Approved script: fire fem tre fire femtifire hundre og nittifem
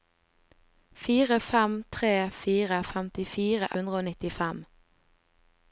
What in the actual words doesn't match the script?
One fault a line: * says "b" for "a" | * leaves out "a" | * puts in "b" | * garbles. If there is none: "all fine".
all fine